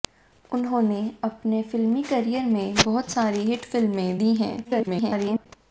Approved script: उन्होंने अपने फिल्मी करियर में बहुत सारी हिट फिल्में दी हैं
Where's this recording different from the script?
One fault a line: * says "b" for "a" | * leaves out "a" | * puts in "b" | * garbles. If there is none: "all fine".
* garbles